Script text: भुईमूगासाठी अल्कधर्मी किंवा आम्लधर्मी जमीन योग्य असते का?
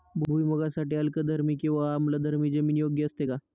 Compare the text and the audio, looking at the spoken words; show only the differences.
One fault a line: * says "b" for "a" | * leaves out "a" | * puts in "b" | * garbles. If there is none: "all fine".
all fine